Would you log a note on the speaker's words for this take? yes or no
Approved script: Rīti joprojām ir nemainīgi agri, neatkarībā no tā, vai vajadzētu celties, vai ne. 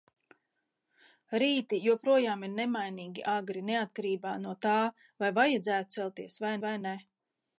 yes